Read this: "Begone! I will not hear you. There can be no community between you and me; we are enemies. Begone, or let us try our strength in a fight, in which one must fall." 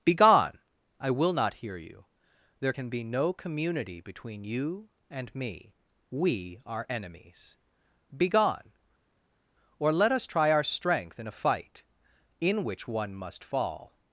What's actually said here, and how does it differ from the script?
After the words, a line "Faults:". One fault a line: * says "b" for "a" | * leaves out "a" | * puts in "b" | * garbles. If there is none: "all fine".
"Begone! I will not hear you. There can be no community between you and me; we are enemies. Begone, or let us try our strength in a fight, in which one must fall."
Faults:
all fine